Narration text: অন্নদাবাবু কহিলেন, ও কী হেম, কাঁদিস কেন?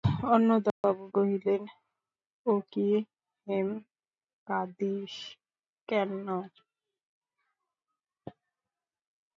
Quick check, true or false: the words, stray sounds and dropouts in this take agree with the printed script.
false